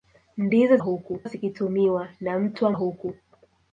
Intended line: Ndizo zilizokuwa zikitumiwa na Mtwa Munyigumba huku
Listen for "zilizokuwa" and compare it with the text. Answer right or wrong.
wrong